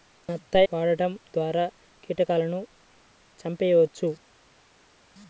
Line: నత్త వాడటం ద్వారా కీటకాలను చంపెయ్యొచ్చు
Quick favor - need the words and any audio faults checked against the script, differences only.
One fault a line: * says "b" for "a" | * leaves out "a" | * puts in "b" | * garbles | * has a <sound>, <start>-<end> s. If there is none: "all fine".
all fine